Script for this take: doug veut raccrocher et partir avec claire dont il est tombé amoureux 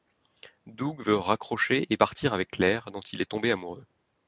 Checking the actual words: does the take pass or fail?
pass